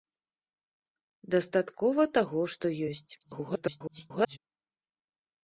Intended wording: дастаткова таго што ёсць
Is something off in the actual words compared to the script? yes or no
yes